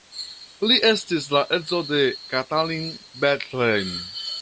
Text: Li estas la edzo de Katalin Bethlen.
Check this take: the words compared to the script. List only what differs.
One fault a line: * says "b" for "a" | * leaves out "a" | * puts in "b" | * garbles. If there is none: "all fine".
* says "estis" for "estas"